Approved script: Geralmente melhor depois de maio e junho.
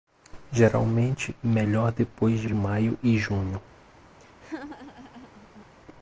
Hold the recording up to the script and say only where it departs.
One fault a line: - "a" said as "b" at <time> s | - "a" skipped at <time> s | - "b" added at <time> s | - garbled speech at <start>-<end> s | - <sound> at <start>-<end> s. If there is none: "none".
- "de" added at 2.4 s
- laugh at 4.2-5.7 s